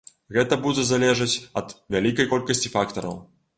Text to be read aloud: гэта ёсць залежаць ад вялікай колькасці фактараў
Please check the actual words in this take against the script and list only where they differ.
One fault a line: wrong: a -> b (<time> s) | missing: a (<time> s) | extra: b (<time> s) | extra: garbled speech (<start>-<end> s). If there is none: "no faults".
wrong: ёсць -> будзе (0.6 s)